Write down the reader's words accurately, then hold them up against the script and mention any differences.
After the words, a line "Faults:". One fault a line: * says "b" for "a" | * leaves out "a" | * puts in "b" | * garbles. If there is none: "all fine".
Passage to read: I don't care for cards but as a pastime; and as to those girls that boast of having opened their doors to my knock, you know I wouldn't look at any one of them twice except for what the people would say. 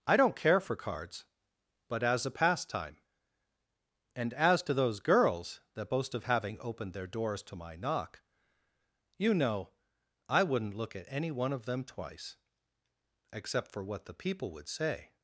I don't care for cards but as a pastime; and as to those girls that boast of having opened their doors to my knock, you know I wouldn't look at any one of them twice except for what the people would say.
Faults:
all fine